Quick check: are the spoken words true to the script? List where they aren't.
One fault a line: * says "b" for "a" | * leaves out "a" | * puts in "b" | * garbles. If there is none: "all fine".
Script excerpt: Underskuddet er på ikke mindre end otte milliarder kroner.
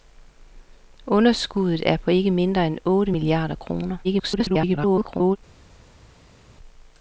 * garbles